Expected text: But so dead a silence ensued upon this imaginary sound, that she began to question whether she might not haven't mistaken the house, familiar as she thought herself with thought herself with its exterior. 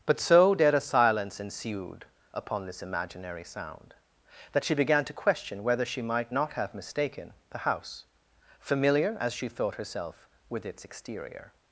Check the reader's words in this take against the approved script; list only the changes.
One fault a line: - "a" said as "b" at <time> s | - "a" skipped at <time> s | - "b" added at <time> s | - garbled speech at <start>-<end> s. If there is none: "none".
- "haven't" said as "have" at 6.5 s
- "thought herself with" skipped at 10.6 s